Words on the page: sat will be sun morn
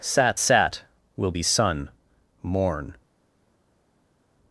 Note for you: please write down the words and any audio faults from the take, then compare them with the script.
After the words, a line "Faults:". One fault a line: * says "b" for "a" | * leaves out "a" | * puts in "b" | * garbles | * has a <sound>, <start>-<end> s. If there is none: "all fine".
sat sat will be sun morn
Faults:
* puts in "sat"